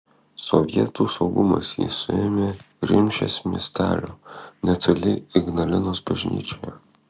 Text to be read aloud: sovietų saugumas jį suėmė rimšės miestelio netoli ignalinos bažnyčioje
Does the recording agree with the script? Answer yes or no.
yes